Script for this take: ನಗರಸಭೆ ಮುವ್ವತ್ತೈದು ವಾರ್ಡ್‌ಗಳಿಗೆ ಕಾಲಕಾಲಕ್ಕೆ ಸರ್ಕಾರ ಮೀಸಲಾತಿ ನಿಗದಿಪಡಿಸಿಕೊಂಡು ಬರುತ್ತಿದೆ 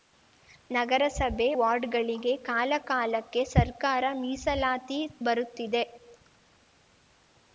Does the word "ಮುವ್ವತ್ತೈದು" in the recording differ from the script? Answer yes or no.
yes